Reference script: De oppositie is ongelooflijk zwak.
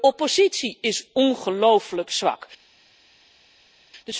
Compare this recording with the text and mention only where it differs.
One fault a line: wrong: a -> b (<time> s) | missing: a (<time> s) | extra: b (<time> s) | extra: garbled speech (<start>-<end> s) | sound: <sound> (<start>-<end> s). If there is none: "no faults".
no faults